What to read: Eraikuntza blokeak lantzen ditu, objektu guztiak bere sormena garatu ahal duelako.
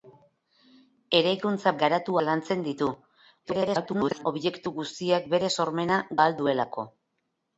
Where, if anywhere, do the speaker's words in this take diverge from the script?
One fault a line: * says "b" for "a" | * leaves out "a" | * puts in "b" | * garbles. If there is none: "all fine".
* says "garatu" for "blokeak"
* garbles
* leaves out "garatu"